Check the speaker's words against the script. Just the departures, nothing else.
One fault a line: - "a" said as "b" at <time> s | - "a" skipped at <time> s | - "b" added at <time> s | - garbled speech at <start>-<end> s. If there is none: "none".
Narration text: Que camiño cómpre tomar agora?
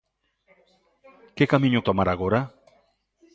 - "cómpre" skipped at 1.8 s